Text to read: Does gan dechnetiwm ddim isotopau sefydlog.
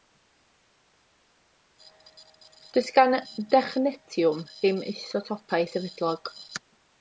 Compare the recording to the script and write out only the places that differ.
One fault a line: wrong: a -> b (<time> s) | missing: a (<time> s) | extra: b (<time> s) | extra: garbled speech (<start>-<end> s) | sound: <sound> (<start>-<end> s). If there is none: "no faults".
no faults